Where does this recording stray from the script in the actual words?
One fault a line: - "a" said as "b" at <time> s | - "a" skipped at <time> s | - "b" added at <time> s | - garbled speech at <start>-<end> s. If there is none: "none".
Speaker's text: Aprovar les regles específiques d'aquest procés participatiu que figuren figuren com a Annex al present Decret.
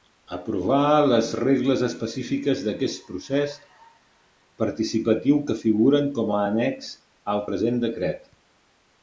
- "figuren" skipped at 6.1 s